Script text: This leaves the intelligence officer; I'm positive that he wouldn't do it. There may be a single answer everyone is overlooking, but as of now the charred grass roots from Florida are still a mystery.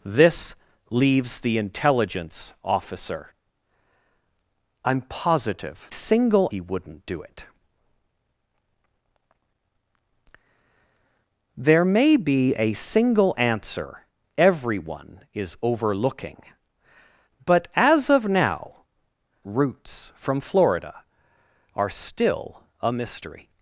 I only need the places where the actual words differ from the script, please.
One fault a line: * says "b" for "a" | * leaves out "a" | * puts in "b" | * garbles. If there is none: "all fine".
* says "single" for "that"
* leaves out "the charred grass"